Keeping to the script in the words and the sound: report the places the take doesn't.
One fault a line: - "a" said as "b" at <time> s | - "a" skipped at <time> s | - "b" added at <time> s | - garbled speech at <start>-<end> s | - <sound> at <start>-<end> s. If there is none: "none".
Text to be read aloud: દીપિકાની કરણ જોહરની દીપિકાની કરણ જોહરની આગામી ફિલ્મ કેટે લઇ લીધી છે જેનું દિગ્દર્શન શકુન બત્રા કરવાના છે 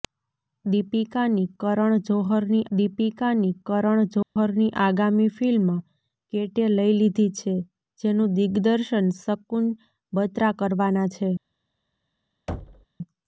- dropout at 4.2-4.4 s
- thud at 12.5-12.9 s